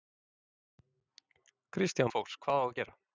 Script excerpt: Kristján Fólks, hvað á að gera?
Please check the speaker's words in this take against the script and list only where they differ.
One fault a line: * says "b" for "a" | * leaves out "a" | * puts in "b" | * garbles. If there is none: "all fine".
all fine